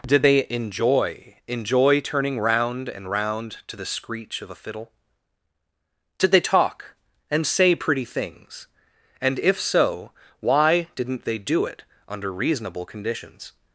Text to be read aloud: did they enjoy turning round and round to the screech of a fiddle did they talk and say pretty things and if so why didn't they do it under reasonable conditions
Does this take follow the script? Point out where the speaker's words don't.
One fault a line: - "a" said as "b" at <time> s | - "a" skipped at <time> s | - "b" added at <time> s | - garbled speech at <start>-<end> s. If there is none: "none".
- "enjoy" added at 1.5 s